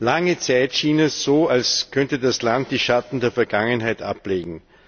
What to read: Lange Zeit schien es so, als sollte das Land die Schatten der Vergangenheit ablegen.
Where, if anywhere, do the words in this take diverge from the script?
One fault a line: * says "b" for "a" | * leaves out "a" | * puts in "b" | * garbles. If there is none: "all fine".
* says "könnte" for "sollte"